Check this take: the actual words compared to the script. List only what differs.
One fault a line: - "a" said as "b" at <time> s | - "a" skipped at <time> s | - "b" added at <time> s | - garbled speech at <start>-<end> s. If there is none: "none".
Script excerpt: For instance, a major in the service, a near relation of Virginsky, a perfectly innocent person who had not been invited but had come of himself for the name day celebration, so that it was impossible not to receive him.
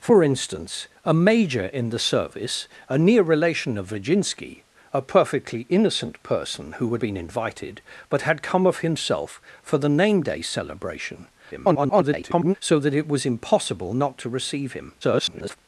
- "not" skipped at 7.0 s
- garbled speech at 11.5-12.5 s
- garbled speech at 15.0-15.6 s